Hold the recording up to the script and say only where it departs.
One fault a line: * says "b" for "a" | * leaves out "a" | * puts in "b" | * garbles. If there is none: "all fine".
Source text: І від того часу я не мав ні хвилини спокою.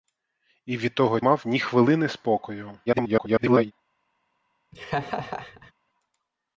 * leaves out "часу я не"
* garbles